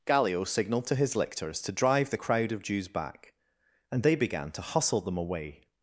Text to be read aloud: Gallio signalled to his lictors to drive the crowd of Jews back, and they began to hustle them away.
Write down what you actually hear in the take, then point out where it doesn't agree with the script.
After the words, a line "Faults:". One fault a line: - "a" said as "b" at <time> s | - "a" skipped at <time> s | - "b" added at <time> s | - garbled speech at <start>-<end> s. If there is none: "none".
Gallio signalled to his lictors to drive the crowd of Jews back, and they began to hustle them away.
Faults:
none